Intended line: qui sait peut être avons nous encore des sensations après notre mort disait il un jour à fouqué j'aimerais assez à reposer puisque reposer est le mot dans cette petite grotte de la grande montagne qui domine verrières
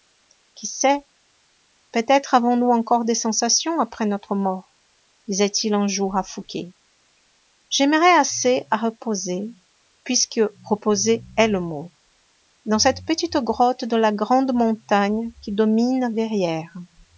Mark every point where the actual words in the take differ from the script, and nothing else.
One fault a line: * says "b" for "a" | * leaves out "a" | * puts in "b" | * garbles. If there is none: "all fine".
all fine